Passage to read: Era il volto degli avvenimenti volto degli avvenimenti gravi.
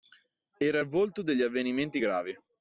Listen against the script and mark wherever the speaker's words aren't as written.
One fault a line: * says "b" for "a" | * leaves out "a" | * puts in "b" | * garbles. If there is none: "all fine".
* leaves out "volto degli avvenimenti"